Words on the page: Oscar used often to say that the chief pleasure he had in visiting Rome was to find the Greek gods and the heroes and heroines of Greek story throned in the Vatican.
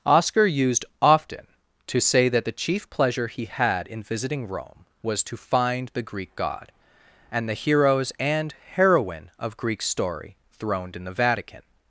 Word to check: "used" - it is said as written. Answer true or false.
true